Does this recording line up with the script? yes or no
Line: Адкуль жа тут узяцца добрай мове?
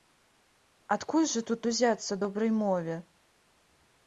yes